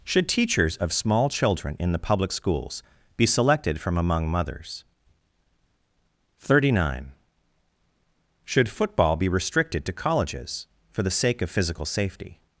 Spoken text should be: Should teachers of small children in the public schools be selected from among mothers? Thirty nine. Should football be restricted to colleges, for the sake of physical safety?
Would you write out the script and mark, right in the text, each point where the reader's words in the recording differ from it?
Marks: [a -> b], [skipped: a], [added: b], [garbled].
Should teachers of small children in the public schools be selected from among mothers? Thirty nine. Should football be restricted to colleges, for the sake of physical safety?